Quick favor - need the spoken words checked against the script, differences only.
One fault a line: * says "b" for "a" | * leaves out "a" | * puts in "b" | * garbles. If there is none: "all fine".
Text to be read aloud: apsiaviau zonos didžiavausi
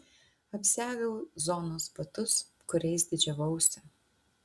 * puts in "batus kuriais"